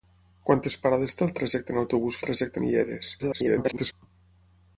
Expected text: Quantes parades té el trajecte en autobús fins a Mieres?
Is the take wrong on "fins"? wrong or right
wrong